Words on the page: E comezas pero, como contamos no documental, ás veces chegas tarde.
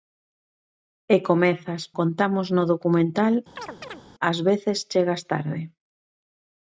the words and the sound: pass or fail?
fail